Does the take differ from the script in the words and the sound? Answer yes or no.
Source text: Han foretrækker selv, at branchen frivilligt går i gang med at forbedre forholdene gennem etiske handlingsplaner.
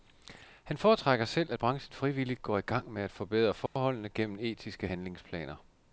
yes